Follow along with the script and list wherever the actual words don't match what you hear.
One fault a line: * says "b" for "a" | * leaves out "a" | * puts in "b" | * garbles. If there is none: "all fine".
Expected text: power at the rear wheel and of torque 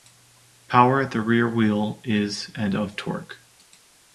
* puts in "is"